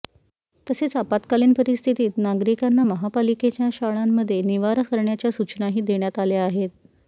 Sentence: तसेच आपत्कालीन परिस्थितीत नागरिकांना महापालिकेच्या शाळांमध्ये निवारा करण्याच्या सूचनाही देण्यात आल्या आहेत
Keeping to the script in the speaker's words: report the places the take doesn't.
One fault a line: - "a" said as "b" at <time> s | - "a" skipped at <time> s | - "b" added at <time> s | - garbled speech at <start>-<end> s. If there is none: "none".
none